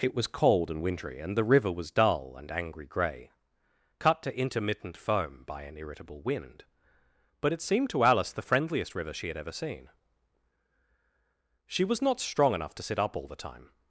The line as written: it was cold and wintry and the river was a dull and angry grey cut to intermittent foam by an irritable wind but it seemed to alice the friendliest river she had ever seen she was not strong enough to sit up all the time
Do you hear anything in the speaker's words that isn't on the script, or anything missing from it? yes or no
yes